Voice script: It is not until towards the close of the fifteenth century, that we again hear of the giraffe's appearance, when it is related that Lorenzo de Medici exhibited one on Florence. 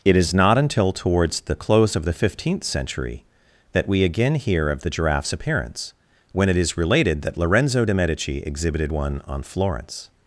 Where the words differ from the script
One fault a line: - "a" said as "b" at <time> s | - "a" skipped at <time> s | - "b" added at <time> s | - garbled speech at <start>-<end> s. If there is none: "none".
none